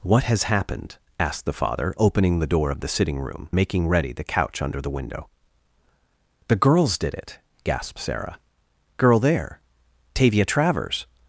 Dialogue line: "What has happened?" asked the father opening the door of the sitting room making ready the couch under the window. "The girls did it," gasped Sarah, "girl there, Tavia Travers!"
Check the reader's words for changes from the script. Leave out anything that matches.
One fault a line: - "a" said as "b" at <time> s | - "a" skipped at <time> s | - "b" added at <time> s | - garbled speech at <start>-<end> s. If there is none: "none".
none